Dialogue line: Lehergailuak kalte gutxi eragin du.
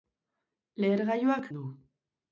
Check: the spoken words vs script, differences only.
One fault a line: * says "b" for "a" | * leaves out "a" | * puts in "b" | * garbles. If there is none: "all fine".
* leaves out "kalte gutxi eragin"